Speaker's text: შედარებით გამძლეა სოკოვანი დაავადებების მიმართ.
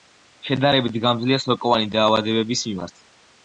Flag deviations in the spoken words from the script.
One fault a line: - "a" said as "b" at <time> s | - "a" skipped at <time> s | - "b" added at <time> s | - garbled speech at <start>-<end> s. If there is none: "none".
none